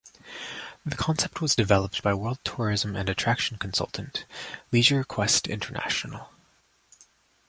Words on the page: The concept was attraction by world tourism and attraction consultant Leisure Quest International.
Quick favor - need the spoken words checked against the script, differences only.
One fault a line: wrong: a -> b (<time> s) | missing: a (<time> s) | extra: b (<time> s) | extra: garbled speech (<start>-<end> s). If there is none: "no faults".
wrong: attraction -> developed (1.5 s)